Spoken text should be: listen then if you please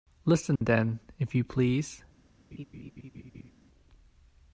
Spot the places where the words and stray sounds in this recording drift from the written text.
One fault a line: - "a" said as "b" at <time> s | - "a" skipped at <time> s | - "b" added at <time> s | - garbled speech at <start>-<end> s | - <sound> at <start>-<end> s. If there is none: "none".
- dropout at 0.6-0.6 s
- laugh at 2.5-3.5 s